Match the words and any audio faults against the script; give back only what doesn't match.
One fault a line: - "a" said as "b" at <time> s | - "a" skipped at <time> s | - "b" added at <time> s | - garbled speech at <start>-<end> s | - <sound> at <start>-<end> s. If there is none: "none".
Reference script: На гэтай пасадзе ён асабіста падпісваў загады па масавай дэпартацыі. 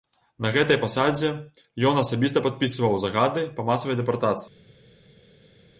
none